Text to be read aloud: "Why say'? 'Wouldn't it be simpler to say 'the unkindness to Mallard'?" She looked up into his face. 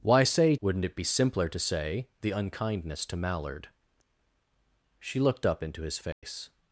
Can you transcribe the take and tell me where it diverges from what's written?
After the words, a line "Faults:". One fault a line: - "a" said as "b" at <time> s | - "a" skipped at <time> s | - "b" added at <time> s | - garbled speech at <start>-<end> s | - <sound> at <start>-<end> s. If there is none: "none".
"Why say'? 'Wouldn't it be simpler to say 'the unkindness to Mallard'?" She looked up into his face.
Faults:
- dropout at 6.1-6.2 s